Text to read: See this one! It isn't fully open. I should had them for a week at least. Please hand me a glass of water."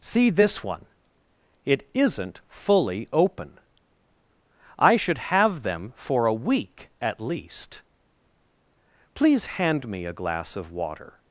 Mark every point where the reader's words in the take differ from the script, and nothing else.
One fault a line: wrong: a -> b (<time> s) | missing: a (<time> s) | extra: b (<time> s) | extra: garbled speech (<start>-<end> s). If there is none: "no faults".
wrong: had -> have (5.2 s)